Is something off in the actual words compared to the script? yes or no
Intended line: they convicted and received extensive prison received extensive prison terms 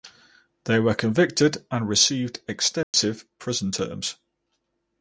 yes